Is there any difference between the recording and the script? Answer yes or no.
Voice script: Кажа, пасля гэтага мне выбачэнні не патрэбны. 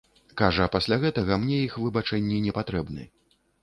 yes